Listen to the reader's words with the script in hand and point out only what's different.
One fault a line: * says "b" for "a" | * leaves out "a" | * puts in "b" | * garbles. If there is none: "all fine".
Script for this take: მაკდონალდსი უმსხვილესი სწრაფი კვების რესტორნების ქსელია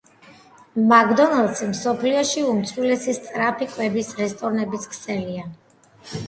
* puts in "მსოფლიოში"